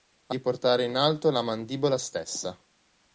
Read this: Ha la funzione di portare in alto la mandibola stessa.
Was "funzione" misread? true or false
true